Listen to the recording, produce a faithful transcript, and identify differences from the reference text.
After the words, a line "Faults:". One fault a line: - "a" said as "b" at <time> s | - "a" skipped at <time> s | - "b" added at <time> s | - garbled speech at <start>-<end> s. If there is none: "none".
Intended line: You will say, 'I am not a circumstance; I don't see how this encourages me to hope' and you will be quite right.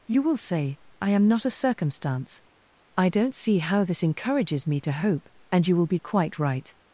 You will say, 'I am not a circumstance; I don't see how this encourages me to hope' and you will be quite right.
Faults:
none